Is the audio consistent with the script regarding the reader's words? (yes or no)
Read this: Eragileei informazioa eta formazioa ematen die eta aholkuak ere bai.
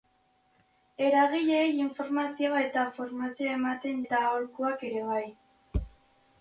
no